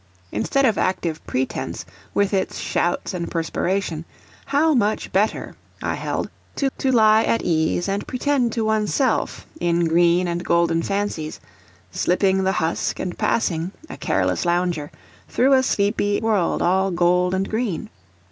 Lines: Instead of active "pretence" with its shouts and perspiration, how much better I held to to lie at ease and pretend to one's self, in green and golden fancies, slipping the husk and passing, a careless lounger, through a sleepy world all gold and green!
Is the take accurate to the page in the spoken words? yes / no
yes